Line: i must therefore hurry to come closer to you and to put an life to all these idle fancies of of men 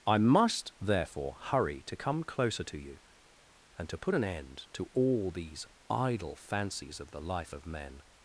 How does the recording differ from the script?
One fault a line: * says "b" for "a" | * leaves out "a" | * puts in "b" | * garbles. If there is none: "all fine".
* says "end" for "life"
* puts in "the life"